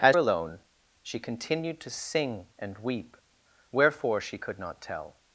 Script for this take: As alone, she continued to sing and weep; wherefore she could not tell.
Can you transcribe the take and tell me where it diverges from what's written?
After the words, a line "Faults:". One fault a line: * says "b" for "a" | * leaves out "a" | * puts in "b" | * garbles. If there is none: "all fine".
As alone, she continued to sing and weep; wherefore she could not tell.
Faults:
all fine